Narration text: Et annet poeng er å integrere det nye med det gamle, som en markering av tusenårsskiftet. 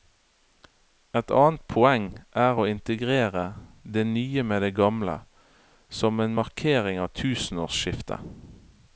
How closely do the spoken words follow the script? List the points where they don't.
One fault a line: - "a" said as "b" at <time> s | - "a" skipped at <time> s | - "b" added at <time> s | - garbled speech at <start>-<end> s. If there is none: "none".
none